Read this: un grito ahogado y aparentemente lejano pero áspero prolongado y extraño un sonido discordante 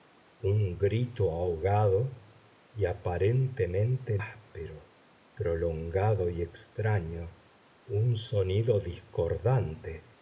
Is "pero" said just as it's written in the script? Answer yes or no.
no